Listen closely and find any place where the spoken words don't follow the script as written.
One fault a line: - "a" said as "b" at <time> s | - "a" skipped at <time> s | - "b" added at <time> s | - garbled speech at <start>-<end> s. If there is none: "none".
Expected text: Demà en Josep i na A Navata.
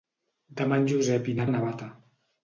none